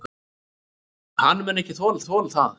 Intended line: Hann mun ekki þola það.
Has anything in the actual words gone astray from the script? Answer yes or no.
yes